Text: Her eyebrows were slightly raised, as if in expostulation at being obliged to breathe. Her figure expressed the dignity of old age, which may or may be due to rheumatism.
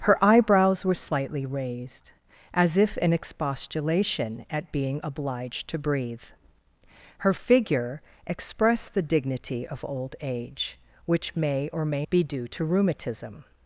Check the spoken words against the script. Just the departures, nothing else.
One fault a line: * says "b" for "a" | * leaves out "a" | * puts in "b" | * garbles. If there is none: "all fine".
all fine